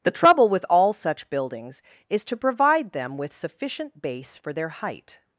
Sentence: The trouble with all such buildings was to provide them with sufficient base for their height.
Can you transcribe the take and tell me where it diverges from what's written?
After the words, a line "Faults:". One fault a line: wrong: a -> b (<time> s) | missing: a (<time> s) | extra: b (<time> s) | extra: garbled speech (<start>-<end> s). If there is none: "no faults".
The trouble with all such buildings is to provide them with sufficient base for their height.
Faults:
wrong: was -> is (2.1 s)